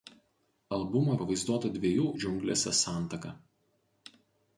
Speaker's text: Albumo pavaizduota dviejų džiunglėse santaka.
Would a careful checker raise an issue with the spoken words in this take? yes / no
no